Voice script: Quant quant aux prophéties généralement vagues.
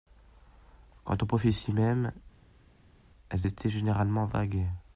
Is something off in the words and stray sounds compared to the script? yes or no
yes